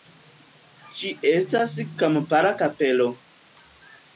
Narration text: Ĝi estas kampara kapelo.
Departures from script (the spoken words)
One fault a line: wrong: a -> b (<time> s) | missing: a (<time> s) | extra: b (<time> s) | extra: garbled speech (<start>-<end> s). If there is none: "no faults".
no faults